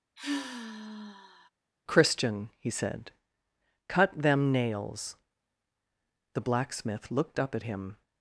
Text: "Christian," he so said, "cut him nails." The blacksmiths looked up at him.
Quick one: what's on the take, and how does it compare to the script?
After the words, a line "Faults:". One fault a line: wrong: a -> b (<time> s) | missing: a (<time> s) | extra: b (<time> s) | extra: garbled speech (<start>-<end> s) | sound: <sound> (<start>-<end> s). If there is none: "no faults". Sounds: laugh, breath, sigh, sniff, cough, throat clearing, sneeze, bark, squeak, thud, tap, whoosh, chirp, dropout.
"Christian," he said, "cut them nails." The blacksmith looked up at him.
Faults:
sound: sigh (0.2-1.5 s)
missing: so (2.7 s)
wrong: him -> them (4.2 s)
wrong: blacksmiths -> blacksmith (6.4 s)